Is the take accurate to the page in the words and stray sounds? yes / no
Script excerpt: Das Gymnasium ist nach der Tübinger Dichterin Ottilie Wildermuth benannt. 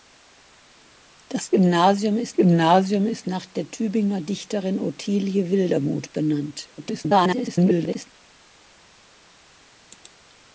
no